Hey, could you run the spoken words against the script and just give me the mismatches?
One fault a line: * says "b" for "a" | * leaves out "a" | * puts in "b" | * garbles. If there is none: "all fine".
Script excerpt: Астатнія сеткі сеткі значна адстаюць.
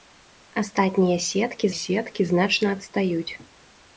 all fine